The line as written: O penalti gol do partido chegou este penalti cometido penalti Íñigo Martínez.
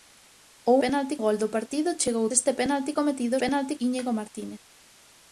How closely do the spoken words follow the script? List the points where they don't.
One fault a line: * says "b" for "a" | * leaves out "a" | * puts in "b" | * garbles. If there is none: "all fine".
all fine